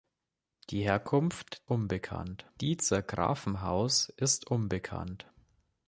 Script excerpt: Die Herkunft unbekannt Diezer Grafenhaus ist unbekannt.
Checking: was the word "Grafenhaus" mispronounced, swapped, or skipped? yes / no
no